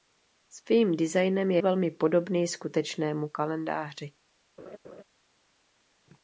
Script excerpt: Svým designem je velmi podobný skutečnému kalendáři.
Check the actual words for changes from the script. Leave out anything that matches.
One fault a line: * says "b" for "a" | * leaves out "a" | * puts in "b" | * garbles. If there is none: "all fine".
all fine